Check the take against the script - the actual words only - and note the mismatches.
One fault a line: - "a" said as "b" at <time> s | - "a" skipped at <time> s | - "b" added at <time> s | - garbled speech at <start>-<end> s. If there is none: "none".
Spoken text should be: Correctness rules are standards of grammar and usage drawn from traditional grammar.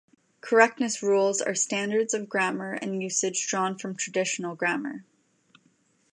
none